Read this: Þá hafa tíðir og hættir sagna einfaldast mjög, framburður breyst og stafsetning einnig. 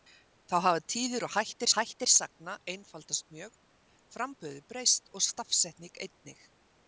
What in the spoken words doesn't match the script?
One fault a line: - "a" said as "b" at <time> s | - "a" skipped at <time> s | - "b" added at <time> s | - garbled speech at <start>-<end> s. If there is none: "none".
- "hættir" added at 1.8 s